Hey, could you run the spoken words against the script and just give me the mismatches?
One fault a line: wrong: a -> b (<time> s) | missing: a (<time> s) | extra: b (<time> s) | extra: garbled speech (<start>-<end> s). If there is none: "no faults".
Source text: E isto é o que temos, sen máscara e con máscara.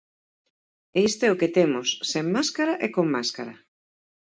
no faults